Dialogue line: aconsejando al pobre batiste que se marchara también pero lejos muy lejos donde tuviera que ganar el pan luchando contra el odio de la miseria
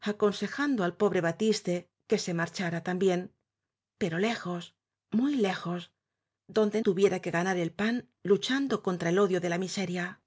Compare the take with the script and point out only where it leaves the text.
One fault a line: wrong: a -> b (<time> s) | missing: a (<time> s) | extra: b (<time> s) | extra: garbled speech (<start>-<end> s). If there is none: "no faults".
no faults